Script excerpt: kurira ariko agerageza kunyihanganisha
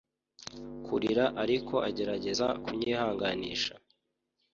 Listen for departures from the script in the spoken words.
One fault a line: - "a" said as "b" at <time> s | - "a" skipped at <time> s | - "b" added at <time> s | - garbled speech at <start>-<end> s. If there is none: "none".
none